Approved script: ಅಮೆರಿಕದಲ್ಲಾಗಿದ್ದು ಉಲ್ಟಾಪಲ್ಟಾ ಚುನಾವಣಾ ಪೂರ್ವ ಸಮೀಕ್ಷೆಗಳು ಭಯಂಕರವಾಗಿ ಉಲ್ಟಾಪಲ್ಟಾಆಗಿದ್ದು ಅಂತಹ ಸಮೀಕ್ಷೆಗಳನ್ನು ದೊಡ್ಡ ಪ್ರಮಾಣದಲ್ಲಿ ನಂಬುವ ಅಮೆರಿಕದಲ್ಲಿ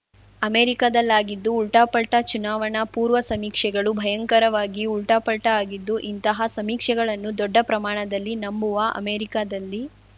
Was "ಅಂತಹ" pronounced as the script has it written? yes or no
no